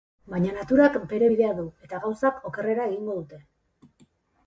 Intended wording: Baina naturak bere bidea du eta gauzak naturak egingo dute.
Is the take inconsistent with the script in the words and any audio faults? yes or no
yes